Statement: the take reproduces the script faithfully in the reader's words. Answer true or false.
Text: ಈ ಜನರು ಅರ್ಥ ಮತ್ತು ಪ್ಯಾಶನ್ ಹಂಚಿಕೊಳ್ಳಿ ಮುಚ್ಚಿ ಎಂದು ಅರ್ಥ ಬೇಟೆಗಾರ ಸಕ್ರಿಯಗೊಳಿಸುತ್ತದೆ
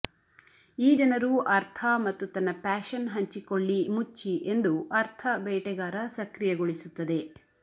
false